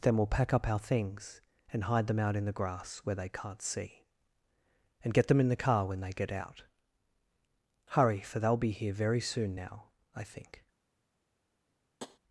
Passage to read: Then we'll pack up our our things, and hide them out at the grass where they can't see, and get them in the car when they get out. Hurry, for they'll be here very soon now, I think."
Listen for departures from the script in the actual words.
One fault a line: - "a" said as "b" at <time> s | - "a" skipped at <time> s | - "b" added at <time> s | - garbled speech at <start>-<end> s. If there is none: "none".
- "our" skipped at 0.8 s
- "at" said as "in" at 2.4 s